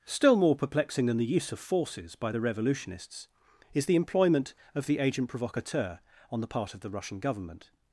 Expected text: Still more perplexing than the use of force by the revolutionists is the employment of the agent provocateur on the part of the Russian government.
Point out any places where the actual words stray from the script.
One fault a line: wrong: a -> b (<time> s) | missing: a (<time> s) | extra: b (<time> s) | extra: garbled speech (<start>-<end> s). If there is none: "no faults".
wrong: force -> forces (1.6 s)